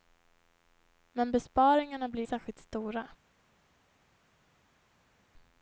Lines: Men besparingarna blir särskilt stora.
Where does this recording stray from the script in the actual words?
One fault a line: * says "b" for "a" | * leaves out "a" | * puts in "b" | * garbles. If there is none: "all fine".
all fine